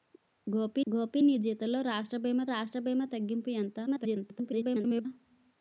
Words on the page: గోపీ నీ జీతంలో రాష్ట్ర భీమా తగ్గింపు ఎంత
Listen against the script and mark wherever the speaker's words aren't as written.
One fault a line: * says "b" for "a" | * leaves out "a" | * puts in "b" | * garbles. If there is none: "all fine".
* puts in "గోపీ"
* puts in "రాష్ట్ర భీమా"
* garbles